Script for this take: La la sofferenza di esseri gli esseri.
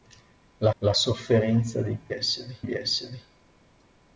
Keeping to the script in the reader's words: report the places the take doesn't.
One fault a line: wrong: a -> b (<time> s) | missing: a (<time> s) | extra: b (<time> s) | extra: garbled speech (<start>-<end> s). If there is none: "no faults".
no faults